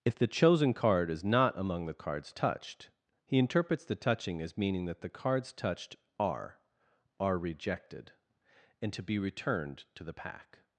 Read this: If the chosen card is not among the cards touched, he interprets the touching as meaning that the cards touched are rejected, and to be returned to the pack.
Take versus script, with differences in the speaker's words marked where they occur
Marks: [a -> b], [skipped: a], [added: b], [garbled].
If the chosen card is not among the cards touched, he interprets the touching as meaning that the cards touched are [added: are] rejected, and to be returned to the pack.